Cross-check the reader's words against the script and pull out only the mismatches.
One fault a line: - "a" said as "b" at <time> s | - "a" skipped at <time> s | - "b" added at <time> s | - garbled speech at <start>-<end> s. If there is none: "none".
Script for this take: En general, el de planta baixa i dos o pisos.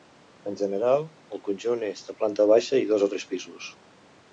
- "conjunt és" added at 1.5 s
- "tres" added at 3.2 s